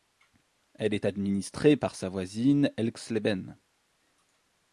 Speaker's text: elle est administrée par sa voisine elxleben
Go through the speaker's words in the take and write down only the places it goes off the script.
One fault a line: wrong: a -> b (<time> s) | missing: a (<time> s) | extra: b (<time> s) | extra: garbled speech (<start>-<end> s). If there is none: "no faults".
no faults